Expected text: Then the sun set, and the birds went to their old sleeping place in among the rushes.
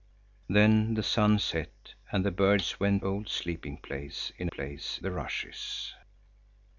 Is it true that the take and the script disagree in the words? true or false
true